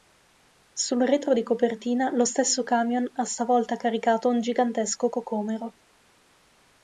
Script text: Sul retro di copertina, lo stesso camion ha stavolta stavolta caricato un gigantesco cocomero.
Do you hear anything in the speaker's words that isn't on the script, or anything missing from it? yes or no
yes